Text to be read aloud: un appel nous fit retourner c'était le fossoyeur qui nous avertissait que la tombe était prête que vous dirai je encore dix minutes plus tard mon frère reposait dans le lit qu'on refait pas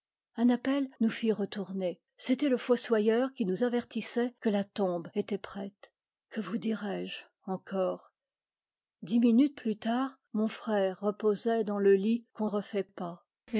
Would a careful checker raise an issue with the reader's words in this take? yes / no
no